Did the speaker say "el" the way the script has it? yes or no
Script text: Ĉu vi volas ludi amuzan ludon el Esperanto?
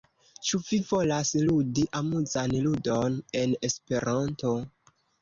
no